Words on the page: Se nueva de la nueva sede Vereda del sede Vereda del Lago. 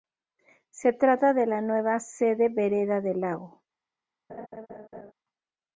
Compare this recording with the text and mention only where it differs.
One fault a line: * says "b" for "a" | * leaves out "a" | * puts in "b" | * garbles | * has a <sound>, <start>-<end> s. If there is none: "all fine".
* says "trata" for "nueva"
* leaves out "sede Vereda del"
* has a laugh, 4.3-5.1 s